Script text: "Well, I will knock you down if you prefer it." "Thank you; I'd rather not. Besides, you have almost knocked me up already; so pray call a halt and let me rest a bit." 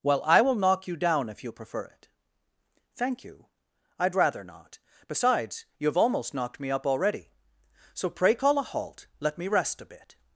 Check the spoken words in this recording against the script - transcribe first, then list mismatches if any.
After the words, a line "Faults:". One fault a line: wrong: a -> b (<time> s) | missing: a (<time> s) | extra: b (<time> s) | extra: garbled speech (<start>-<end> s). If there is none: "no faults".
"Well, I will knock you down if you prefer it." "Thank you; I'd rather not. Besides, you have almost knocked me up already; so pray call a halt let me rest a bit."
Faults:
missing: and (9.1 s)